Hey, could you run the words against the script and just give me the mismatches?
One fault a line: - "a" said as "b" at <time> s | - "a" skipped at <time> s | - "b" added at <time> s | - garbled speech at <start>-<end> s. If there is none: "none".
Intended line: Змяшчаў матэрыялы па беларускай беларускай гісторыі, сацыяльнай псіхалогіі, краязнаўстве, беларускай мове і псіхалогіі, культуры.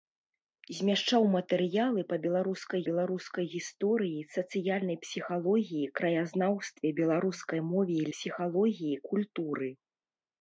none